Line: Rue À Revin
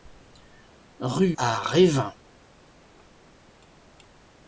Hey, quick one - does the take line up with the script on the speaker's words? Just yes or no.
yes